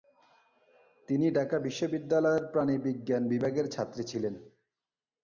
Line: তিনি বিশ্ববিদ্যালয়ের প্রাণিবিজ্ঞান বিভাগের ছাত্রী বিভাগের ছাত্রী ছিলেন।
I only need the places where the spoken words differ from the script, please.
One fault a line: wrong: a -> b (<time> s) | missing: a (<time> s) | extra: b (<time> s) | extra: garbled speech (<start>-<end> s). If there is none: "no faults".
extra: ঢাকা (1.3 s)
missing: বিভাগের ছাত্রী (4.0 s)